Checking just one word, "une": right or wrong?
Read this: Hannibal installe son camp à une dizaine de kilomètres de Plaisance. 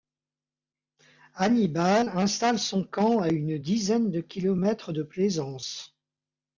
right